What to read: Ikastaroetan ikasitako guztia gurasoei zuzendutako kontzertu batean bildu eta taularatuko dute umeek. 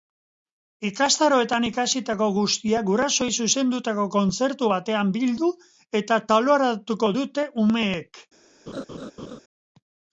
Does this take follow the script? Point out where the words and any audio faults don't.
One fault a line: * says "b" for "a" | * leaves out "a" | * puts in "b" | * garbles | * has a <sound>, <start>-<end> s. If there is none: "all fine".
* has a laugh, 8.7-9.4 s